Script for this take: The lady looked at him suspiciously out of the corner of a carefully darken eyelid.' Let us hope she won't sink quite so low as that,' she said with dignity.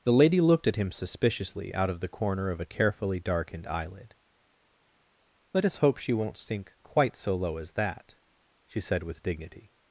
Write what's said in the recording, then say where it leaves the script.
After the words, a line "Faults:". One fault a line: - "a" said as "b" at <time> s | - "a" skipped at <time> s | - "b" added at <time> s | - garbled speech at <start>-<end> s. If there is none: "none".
The lady looked at him suspiciously out of the corner of a carefully darkened eyelid.' Let us hope she won't sink quite so low as that,' she said with dignity.
Faults:
- "darken" said as "darkened" at 3.2 s